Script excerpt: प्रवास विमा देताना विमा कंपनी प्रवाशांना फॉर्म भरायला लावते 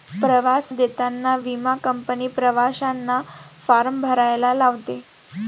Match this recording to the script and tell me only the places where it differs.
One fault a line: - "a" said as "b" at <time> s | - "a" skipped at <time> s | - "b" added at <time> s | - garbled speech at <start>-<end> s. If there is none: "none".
- "विमा" skipped at 0.7 s